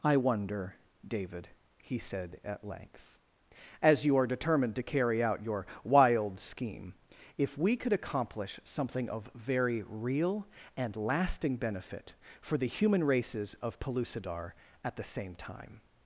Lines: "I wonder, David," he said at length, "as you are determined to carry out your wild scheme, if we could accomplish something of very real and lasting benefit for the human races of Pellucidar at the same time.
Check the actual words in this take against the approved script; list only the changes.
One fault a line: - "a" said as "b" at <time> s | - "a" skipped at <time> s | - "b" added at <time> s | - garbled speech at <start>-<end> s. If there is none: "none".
none